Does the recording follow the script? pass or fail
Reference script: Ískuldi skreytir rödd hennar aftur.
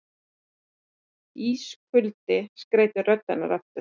pass